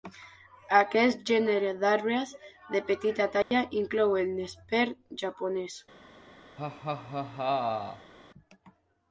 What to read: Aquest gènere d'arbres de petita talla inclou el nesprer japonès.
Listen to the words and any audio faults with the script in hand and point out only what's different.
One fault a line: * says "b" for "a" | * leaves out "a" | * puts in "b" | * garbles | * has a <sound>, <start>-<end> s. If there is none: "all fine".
* has a dropout, 3.4-3.5 s
* has a laugh, 6.6-8.1 s